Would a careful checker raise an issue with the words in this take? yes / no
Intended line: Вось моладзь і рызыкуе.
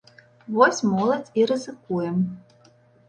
no